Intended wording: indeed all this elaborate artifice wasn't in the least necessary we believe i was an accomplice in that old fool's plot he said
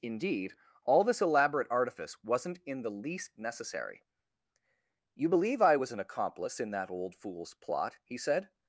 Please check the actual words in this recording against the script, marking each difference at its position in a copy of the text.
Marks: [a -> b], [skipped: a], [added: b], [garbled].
indeed all this elaborate artifice wasn't in the least necessary [we -> you] believe i was an accomplice in that old fool's plot he said